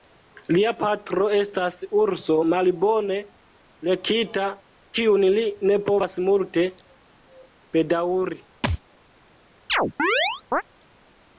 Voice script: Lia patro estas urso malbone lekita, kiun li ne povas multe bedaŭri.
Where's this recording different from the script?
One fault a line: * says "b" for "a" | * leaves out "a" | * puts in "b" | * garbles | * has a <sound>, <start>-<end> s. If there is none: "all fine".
* has a thud, 8.6-8.8 s
* has a chirp, 9.7-10.6 s